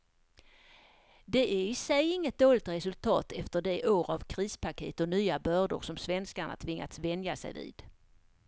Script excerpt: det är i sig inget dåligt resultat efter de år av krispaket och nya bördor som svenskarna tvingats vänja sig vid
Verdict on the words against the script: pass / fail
pass